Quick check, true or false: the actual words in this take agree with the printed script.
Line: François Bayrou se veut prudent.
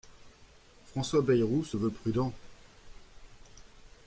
true